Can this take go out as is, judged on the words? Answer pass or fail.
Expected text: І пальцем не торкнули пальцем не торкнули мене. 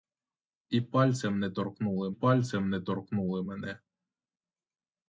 pass